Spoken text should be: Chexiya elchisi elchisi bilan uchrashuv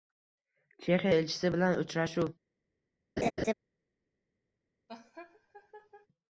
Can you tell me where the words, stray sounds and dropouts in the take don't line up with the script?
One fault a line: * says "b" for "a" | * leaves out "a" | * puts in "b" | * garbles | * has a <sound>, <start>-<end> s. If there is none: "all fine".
* leaves out "elchisi"
* has a laugh, 3.2-3.5 s
* has a laugh, 4.9-6.1 s